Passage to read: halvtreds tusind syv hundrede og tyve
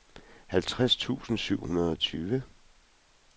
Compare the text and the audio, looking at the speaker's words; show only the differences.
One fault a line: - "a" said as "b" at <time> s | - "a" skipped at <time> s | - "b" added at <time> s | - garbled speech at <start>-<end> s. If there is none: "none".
none